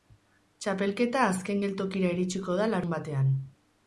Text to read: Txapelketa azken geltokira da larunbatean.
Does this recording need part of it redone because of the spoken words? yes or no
yes